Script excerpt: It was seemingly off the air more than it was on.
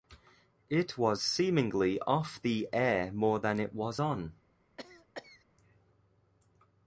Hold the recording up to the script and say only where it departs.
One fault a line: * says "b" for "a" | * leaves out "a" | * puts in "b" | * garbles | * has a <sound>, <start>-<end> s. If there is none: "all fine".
* has a cough, 4.8-5.4 s